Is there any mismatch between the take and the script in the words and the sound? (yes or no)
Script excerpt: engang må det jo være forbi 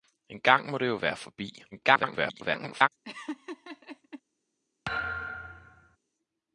yes